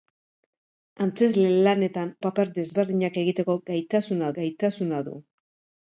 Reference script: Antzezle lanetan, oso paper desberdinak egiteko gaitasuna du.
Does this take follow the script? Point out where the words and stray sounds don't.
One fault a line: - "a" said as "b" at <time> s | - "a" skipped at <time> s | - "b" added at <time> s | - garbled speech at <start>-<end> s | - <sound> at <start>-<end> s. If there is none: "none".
- "oso" skipped at 2.1 s
- "gaitasuna" added at 4.4 s